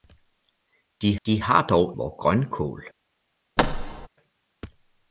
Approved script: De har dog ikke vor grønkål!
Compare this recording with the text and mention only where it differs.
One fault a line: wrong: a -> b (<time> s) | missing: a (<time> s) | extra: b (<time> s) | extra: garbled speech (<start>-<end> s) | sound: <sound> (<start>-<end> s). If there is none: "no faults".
extra: de (1.3 s)
missing: ikke (2.0 s)
sound: thud (3.6-4.1 s)